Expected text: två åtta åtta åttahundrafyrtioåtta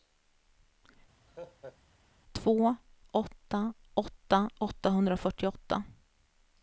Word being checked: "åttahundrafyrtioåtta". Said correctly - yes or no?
yes